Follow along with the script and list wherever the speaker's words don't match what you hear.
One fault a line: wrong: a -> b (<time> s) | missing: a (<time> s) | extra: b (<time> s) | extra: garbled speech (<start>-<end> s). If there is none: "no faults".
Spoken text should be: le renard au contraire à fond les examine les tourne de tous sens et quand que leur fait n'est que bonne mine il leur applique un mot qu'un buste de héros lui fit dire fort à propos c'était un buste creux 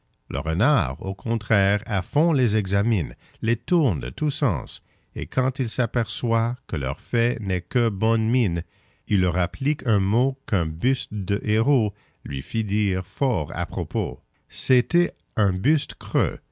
extra: il s'aperçoit (5.6 s)